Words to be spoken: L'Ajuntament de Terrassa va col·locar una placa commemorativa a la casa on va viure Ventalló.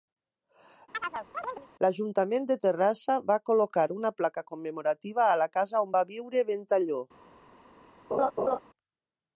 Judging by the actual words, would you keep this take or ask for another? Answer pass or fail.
pass